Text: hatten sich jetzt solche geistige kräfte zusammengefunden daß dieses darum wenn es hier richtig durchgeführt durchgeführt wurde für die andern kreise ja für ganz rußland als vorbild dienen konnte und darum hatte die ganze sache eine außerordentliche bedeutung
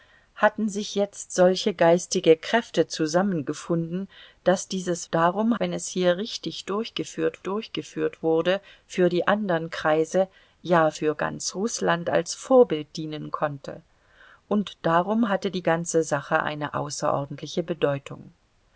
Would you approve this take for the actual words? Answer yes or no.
yes